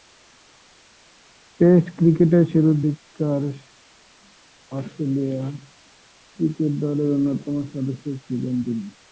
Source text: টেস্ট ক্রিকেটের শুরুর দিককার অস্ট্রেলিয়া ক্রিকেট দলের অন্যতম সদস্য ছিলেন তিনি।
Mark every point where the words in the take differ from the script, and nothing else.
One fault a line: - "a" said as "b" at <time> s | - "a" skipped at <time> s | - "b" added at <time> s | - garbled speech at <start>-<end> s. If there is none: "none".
none